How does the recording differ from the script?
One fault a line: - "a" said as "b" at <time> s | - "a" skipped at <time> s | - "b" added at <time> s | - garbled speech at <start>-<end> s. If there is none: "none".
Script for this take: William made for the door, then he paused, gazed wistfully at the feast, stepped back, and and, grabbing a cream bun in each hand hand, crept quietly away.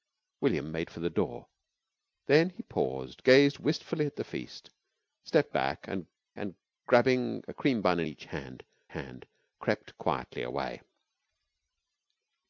none